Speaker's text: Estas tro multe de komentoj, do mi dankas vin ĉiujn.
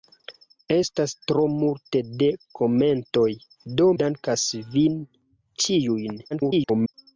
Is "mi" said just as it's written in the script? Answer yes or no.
no